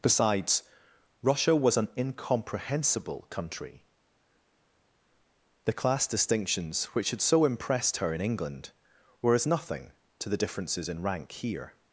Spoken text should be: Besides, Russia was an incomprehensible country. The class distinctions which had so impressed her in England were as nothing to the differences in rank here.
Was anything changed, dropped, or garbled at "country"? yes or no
no